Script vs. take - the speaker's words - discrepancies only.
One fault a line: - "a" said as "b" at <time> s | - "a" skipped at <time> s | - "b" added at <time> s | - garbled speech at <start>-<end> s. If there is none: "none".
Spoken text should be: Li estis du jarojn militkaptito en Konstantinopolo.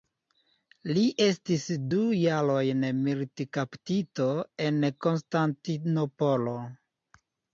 none